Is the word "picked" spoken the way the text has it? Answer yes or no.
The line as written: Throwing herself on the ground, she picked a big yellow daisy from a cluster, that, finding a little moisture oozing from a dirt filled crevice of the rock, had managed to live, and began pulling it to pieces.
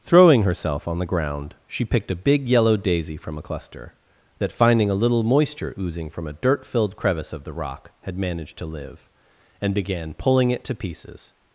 yes